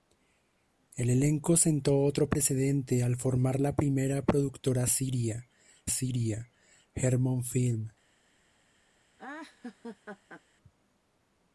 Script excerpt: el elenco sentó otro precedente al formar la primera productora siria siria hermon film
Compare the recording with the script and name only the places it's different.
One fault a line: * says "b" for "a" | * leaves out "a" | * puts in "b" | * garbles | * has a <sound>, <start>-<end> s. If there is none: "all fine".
* has a laugh, 9.2-10.4 s